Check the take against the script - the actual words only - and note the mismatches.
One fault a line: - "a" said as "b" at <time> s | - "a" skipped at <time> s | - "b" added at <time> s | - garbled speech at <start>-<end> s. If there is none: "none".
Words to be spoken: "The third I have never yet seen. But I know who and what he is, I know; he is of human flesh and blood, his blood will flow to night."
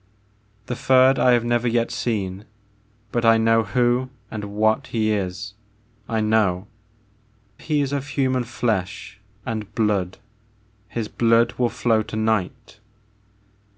none